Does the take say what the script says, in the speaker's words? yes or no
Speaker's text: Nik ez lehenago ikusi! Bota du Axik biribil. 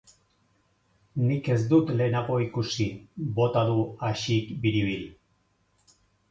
no